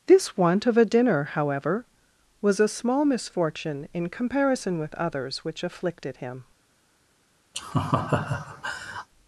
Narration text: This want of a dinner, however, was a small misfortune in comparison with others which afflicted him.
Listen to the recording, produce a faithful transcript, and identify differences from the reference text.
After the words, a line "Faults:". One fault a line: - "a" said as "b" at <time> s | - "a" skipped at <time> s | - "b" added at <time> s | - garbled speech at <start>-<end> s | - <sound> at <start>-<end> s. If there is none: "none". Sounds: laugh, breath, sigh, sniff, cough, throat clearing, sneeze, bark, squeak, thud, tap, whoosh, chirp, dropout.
This want of a dinner, however, was a small misfortune in comparison with others which afflicted him.
Faults:
- laugh at 7.5-9.1 s